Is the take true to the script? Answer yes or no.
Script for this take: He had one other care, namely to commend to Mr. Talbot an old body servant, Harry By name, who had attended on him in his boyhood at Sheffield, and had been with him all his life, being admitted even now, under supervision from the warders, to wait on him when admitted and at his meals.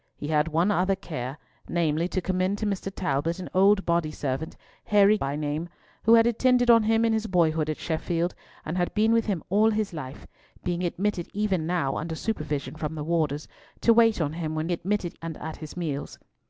yes